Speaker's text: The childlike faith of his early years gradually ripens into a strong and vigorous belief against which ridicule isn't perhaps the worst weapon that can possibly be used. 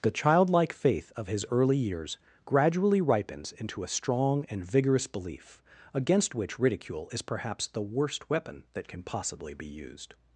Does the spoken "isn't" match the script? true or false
false